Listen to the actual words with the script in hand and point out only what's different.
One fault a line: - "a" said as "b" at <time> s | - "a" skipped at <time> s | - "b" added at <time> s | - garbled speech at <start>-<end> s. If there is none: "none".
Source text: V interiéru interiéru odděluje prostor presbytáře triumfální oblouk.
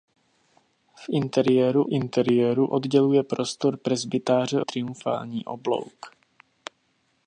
none